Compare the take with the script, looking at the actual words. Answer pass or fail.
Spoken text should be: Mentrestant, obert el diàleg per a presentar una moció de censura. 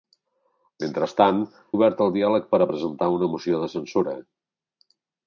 pass